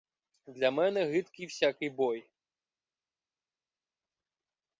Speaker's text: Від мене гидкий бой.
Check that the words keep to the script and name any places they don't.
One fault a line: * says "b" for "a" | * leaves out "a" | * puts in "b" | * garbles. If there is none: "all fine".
* says "Для" for "Від"
* puts in "всякий"